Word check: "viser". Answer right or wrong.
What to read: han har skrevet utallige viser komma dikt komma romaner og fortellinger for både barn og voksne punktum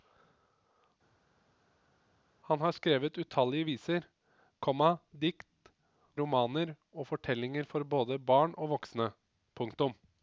right